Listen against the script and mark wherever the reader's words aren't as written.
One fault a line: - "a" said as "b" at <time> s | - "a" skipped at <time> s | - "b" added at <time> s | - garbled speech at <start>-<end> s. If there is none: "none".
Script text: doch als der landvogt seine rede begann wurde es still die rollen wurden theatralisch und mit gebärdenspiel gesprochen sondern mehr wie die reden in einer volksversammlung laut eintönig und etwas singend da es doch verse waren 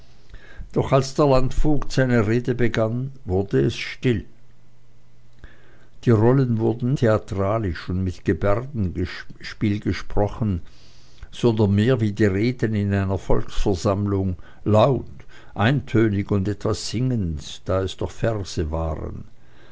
none